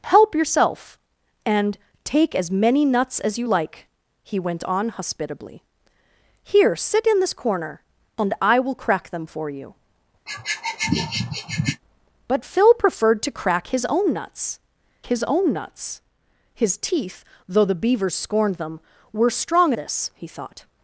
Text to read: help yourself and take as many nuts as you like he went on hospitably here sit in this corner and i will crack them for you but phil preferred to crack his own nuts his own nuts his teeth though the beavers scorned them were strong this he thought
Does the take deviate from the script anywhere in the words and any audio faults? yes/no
yes